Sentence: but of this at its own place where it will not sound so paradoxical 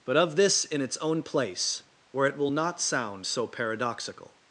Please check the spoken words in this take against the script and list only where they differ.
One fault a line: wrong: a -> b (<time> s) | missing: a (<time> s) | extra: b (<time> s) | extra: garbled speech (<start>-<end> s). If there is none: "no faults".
wrong: at -> in (0.7 s)